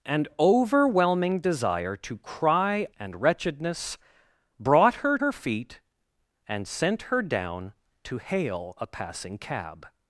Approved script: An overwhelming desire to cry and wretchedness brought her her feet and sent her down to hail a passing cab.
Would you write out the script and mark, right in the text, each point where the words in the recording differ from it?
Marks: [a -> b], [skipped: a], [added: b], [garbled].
An overwhelming desire to cry and wretchedness brought her her feet and sent her down to hail a passing cab.